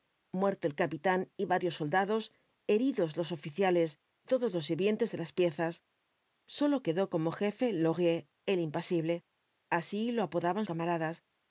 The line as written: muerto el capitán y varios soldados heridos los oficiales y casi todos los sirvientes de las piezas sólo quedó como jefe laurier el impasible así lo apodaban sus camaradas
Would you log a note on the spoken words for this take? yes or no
yes